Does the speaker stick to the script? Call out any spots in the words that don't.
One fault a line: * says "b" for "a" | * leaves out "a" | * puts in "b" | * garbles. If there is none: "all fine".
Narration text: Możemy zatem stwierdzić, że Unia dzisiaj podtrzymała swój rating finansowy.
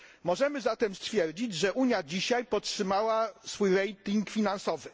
all fine